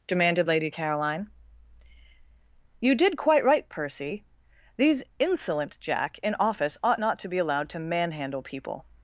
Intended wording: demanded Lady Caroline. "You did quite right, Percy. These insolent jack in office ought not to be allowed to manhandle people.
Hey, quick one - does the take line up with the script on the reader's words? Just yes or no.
yes